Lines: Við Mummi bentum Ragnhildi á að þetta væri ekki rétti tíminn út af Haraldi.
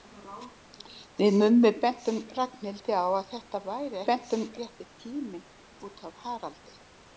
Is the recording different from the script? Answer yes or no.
yes